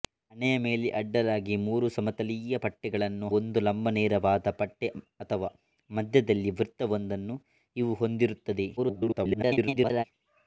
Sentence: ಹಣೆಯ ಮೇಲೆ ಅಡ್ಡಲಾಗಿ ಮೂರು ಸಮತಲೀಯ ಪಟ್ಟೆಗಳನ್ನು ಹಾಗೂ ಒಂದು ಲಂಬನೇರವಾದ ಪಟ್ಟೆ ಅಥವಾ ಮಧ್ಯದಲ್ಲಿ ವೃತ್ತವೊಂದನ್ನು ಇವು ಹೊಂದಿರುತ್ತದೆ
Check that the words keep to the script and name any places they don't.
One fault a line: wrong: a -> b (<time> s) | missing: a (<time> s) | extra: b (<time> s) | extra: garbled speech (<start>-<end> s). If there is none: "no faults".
missing: ಹಾಗೂ (3.3 s)
extra: garbled speech (8.8-10.0 s)